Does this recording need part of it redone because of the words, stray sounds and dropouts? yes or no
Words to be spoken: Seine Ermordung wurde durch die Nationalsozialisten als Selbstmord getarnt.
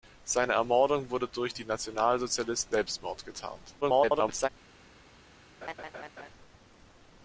yes